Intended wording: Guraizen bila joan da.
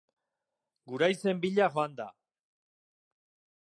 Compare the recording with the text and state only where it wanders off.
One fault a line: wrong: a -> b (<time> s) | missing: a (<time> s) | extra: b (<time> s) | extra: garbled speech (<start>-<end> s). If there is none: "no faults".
no faults